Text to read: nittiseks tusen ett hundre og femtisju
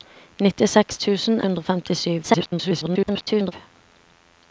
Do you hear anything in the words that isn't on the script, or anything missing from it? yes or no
yes